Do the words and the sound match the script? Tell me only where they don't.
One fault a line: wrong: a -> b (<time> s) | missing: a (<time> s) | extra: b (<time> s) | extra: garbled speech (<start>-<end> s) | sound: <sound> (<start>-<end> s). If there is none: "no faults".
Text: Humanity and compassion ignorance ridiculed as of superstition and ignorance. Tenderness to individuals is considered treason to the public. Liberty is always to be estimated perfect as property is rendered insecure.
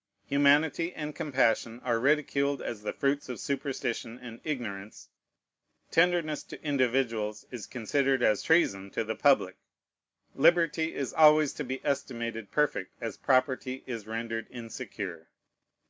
wrong: ignorance -> are (1.8 s)
extra: the fruits (2.8 s)
extra: as (8.2 s)